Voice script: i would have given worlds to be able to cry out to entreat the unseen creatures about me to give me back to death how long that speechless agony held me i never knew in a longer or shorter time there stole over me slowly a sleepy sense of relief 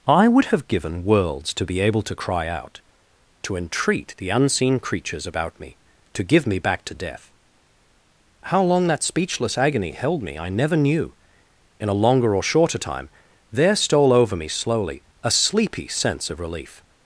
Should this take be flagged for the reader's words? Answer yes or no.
no